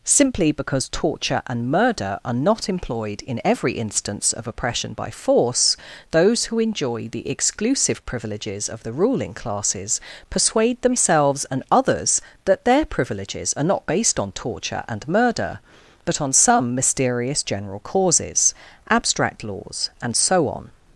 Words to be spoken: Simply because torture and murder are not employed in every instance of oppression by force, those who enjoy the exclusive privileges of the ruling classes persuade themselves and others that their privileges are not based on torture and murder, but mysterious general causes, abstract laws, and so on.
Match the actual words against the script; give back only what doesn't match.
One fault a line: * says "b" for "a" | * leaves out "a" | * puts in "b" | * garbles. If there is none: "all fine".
* puts in "on some"